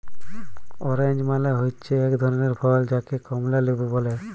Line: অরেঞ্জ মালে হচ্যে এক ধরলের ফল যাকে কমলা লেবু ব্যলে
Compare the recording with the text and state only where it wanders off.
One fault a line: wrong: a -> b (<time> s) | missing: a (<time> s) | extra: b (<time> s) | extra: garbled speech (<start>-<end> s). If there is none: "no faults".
no faults